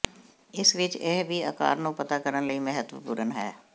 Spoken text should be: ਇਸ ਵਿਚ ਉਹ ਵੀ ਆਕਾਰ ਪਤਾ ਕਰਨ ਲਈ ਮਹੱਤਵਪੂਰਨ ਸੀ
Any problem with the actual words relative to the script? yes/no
yes